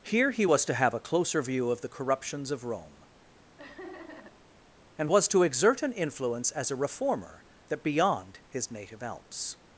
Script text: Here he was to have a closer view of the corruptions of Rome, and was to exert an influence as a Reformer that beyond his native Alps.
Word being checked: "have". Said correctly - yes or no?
yes